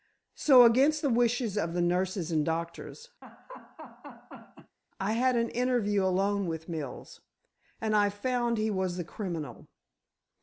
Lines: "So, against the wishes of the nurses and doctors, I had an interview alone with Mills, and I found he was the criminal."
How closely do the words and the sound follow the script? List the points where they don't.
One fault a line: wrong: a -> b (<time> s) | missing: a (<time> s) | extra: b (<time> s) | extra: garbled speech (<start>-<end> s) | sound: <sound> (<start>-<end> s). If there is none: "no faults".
sound: laugh (3.2-4.8 s)